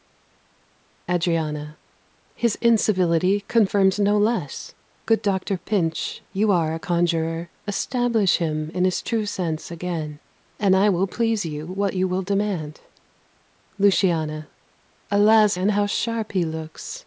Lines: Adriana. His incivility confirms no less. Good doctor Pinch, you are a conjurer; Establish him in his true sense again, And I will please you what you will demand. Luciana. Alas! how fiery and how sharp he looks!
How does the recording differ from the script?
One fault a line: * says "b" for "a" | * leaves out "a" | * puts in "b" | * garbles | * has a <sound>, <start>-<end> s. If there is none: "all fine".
* leaves out "how fiery"